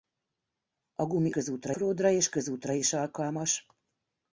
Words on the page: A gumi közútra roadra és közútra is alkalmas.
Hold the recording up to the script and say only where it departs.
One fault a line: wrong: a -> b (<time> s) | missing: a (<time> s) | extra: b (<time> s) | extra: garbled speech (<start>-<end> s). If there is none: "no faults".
no faults